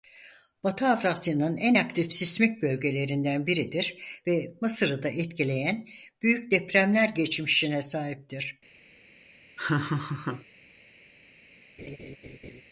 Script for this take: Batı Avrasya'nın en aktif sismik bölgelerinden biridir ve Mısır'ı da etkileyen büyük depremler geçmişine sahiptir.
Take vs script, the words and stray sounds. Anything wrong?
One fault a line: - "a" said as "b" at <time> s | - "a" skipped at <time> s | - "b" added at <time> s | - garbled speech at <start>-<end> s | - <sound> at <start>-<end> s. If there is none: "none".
- laugh at 9.6-10.5 s
- laugh at 11.8-12.6 s